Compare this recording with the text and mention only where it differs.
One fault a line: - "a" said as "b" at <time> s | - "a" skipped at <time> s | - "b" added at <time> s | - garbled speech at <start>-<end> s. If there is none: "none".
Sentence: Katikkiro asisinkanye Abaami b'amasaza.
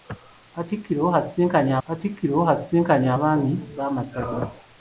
- "katikkiro asisinkanye" added at 1.8 s